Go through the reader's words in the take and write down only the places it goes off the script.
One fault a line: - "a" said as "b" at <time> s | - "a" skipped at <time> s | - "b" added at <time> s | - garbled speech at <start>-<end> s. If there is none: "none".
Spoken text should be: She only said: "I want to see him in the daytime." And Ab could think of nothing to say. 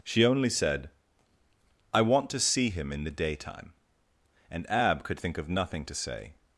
none